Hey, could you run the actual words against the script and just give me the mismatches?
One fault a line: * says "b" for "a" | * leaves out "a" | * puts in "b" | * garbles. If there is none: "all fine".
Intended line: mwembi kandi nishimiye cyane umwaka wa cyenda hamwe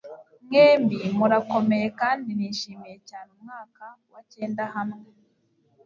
* puts in "murakomeye"